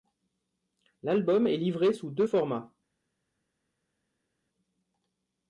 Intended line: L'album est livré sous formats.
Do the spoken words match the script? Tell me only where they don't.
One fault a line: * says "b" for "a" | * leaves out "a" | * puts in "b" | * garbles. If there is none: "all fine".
* puts in "deux"